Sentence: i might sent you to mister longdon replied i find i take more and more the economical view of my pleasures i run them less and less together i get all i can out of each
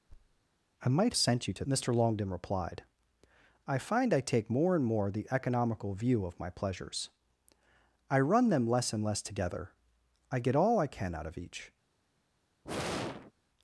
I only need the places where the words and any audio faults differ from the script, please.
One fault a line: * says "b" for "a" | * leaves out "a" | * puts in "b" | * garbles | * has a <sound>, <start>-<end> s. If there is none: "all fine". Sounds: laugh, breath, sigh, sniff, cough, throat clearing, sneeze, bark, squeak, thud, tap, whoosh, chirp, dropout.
* has a thud, 0.1-0.4 s
* has a sigh, 12.6-13.3 s